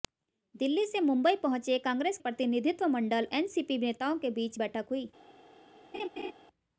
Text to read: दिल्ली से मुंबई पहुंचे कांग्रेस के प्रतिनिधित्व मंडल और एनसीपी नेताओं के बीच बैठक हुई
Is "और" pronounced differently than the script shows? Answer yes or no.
yes